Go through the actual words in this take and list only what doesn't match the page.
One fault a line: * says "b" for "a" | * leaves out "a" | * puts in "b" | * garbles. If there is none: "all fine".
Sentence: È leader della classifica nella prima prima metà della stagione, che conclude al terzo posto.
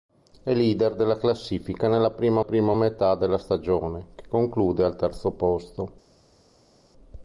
all fine